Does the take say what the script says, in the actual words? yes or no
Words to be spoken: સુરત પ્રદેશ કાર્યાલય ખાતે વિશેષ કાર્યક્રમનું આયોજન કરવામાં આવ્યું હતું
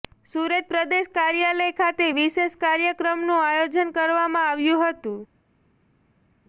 yes